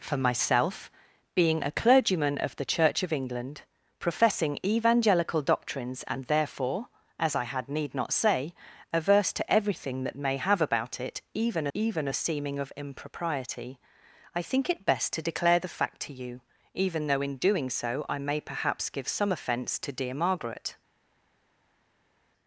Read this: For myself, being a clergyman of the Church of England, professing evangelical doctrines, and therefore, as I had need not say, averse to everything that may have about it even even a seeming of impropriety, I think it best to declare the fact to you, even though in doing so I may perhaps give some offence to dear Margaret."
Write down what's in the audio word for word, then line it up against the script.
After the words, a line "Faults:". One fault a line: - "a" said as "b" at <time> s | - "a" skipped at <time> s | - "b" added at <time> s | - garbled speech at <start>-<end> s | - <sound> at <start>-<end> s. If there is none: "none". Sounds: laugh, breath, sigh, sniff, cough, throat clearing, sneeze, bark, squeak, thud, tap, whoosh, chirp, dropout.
For myself, being a clergyman of the Church of England, professing evangelical doctrines, and therefore, as I had need not say, averse to everything that may have about it even even a seeming of impropriety, I think it best to declare the fact to you, even though in doing so I may perhaps give some offence to dear Margaret."
Faults:
none